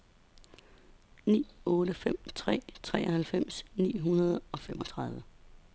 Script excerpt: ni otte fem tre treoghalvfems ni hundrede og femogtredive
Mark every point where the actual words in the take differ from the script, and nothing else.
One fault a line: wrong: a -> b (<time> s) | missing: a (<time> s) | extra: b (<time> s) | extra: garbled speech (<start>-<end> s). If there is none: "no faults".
no faults